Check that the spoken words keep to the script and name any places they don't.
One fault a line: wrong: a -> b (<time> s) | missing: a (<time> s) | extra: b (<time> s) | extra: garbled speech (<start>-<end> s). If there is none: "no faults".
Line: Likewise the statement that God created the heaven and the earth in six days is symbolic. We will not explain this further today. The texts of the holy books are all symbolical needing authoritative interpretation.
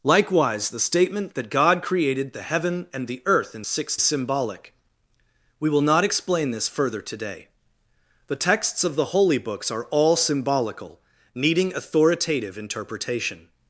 missing: days is (4.0 s)